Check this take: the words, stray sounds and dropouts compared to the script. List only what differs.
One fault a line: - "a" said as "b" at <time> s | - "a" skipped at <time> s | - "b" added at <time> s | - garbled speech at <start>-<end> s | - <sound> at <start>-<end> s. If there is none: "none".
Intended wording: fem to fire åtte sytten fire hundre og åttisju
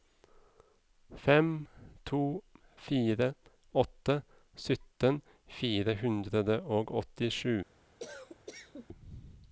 - cough at 8.0-8.9 s